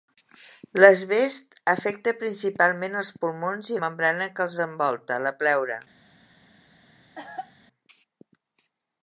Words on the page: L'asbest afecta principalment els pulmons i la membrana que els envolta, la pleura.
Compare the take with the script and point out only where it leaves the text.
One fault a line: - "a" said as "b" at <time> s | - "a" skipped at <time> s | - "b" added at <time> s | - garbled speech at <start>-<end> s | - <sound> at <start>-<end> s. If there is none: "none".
- "la" skipped at 3.8 s
- cough at 7.2-7.5 s